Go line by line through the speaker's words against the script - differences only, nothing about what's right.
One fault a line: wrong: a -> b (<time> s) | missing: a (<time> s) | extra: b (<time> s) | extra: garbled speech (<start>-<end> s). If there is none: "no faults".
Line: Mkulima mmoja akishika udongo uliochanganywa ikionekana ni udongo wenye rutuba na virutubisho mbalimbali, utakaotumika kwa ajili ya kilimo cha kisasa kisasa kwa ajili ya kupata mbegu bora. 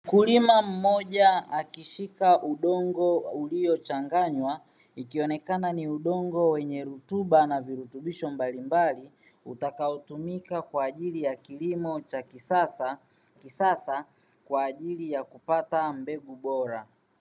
no faults